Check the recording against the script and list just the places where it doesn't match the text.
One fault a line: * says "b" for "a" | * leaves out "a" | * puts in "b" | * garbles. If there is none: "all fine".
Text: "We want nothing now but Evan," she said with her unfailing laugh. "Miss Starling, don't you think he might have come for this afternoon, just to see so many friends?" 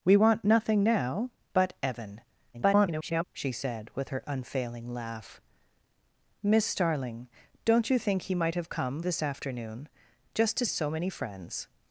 * garbles
* leaves out "for"
* leaves out "see"